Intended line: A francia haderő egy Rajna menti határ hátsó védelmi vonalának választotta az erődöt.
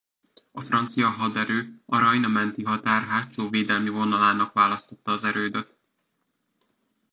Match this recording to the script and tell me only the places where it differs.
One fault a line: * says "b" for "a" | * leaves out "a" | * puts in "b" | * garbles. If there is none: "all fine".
* says "a" for "egy"